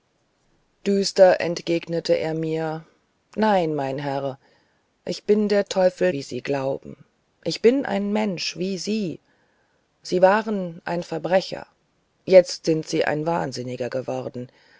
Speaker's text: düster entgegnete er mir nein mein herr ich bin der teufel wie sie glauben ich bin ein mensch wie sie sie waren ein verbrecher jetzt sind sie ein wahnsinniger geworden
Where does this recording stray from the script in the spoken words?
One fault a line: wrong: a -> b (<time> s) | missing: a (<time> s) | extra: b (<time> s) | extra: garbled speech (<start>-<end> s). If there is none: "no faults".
no faults